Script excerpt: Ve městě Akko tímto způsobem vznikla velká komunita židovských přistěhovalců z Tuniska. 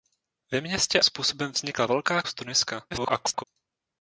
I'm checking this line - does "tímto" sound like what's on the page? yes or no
no